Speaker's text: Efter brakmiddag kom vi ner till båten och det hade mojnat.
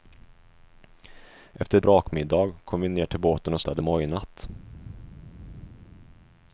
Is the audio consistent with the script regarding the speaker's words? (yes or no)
yes